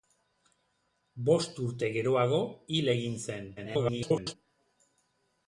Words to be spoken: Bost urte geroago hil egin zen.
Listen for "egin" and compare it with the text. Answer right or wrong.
right